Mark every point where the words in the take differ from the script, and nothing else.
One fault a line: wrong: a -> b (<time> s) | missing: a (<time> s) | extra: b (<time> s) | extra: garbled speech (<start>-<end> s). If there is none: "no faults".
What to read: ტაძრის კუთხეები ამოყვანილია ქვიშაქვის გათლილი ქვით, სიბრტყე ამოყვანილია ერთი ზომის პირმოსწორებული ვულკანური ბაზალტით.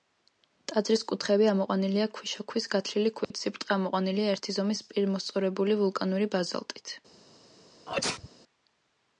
no faults